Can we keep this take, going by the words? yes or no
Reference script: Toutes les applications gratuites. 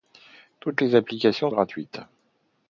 yes